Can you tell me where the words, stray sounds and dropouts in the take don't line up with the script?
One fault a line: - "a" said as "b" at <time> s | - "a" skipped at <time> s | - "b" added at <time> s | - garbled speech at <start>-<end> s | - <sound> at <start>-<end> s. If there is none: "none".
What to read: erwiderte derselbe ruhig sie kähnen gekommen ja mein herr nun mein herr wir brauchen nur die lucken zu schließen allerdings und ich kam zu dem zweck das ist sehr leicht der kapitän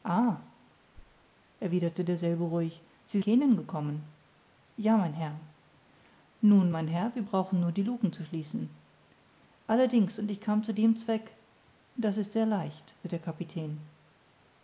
- thud at 0.9-1.3 s